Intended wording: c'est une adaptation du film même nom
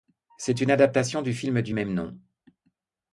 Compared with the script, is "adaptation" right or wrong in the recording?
right